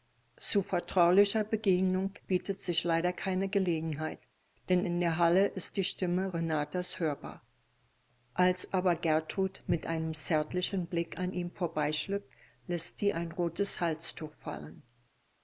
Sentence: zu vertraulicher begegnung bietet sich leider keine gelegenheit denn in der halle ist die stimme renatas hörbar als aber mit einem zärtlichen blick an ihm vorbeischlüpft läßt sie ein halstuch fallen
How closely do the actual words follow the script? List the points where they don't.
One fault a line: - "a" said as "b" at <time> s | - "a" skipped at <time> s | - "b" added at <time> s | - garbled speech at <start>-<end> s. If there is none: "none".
- "gertrud" added at 8.9 s
- "rotes" added at 13.3 s